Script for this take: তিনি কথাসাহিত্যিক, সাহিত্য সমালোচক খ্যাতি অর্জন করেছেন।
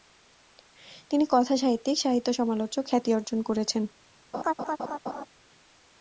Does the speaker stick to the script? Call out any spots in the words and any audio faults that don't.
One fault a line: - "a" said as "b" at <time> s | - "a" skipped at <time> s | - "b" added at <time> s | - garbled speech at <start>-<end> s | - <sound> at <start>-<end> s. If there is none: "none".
- laugh at 4.3-5.3 s